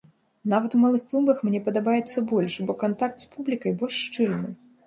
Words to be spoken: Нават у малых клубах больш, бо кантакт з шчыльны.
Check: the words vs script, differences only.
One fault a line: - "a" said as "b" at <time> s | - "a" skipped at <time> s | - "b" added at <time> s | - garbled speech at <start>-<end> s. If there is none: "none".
- "мне падабаецца" added at 1.5 s
- "публікай больш" added at 3.4 s